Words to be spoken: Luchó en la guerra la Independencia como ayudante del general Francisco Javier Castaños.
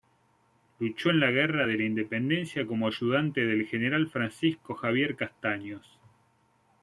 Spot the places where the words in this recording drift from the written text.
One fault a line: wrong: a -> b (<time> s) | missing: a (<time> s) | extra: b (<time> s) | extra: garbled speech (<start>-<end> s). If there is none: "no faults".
extra: de (1.6 s)